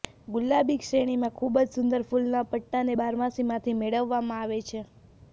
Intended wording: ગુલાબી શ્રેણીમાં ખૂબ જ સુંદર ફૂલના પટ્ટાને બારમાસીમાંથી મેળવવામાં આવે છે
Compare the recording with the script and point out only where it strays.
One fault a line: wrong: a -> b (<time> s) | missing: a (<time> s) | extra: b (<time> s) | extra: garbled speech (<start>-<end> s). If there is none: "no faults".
no faults